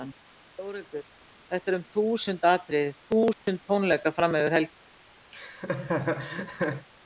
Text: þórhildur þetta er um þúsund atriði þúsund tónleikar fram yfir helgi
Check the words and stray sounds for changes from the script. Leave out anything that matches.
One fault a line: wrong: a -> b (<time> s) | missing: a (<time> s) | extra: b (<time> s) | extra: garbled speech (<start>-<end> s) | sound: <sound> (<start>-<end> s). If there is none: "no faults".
sound: dropout (3.3-3.5 s)
sound: laugh (5.3-6.9 s)